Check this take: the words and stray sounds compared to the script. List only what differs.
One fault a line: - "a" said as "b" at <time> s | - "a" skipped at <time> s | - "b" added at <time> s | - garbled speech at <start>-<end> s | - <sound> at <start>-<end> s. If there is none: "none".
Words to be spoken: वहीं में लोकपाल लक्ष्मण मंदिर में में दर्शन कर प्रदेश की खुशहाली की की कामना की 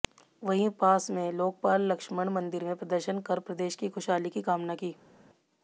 - "पास" added at 0.8 s
- "में" skipped at 2.8 s
- "की" skipped at 4.4 s